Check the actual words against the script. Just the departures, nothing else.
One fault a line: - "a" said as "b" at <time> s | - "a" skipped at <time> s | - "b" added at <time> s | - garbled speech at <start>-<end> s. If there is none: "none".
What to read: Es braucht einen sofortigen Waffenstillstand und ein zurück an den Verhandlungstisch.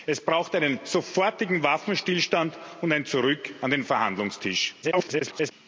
- garbled speech at 4.8-5.5 s